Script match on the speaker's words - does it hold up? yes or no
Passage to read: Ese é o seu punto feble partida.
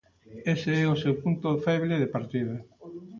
no